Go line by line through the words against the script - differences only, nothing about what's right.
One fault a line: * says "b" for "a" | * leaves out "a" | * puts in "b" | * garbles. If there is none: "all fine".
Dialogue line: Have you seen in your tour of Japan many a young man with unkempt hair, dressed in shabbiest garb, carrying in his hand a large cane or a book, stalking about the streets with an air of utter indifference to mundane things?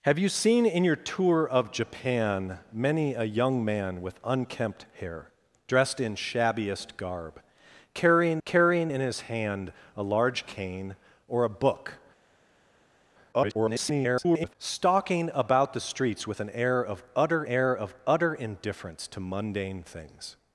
* puts in "carrying"
* garbles
* puts in "air of utter"